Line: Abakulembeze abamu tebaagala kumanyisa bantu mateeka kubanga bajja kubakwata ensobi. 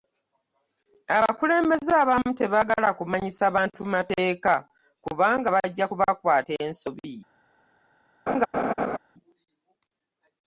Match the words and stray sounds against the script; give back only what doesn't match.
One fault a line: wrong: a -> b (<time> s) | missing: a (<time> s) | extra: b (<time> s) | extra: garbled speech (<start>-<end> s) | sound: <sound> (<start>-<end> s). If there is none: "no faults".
sound: laugh (8.3-9.0 s)